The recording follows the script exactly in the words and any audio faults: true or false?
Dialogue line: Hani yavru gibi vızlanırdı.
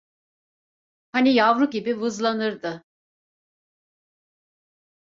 true